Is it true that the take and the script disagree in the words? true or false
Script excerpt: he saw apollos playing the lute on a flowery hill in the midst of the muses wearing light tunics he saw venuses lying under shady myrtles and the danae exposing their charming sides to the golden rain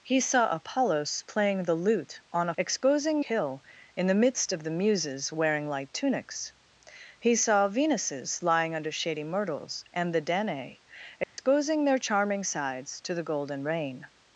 true